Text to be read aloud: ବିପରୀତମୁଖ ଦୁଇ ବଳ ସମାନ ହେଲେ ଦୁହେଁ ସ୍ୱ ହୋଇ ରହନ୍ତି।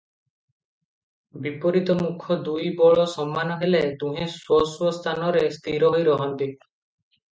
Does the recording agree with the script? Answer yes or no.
no